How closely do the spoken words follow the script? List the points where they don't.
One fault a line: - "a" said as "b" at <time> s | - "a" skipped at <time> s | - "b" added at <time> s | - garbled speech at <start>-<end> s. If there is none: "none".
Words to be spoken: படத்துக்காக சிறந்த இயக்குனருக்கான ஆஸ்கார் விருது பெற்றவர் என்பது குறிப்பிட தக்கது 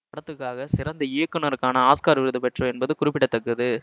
none